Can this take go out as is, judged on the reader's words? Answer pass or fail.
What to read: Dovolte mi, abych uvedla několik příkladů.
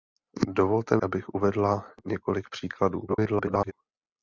fail